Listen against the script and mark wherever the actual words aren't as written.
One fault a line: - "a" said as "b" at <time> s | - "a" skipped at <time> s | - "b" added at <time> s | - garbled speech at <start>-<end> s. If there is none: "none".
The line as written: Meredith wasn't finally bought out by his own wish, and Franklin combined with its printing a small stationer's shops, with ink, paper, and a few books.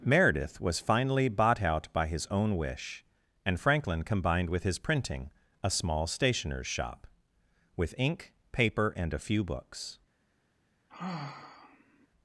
- "wasn't" said as "was" at 0.6 s
- "its" said as "his" at 4.6 s
- "shops" said as "shop" at 6.7 s